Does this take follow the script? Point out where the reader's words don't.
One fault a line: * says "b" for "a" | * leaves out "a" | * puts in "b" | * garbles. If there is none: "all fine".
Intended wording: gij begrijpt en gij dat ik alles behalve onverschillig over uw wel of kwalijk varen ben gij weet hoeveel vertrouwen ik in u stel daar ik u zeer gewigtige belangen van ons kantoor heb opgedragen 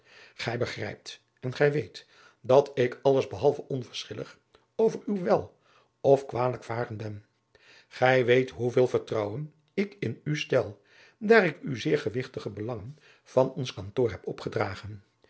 * puts in "weet"